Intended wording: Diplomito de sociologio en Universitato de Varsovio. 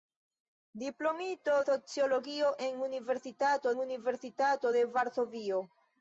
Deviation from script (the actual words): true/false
true